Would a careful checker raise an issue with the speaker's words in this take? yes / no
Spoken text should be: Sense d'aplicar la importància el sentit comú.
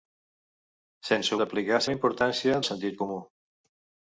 no